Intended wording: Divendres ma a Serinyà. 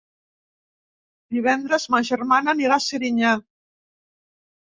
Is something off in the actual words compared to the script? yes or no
yes